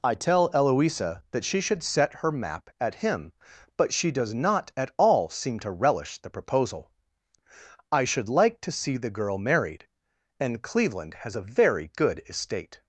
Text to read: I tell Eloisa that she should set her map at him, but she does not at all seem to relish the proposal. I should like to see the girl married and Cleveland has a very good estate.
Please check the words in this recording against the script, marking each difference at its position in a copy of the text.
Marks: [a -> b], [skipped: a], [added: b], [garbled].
I tell Eloisa that she should set her map at him, but she does not at all seem to relish the proposal. I should like to see the girl married and Cleveland has a very good estate.